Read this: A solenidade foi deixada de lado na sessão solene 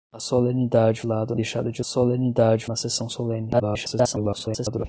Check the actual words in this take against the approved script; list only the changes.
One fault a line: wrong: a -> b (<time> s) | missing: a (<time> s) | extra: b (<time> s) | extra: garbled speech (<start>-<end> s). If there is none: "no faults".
wrong: foi -> lado (1.0 s)
wrong: lado -> solenidade (1.8 s)
extra: garbled speech (3.5-4.9 s)